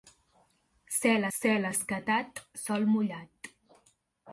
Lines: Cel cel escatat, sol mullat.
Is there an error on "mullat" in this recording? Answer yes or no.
no